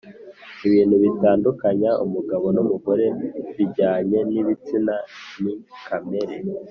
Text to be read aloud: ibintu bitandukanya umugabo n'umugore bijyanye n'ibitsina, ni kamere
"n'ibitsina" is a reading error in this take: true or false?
false